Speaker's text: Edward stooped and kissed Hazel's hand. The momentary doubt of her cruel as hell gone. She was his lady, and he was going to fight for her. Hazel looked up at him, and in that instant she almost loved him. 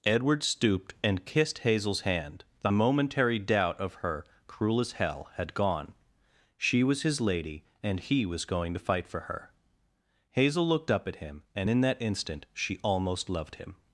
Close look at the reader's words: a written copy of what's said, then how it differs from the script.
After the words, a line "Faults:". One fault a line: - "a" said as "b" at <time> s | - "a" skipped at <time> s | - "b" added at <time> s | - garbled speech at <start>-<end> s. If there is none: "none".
Edward stooped and kissed Hazel's hand. The momentary doubt of her cruel as hell had gone. She was his lady, and he was going to fight for her. Hazel looked up at him, and in that instant she almost loved him.
Faults:
- "had" added at 5.3 s